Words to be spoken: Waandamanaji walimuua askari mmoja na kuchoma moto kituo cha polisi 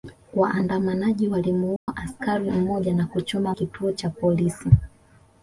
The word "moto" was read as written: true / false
false